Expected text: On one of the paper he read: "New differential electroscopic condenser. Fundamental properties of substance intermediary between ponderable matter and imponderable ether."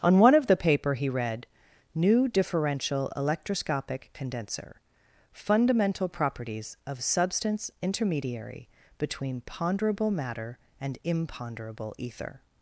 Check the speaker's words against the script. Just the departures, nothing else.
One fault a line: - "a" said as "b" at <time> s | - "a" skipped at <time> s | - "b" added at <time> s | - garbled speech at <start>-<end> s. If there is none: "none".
none